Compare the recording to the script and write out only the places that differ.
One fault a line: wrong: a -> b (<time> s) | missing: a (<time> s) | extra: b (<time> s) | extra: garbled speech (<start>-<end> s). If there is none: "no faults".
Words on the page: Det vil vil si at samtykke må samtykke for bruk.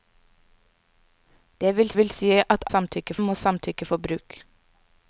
no faults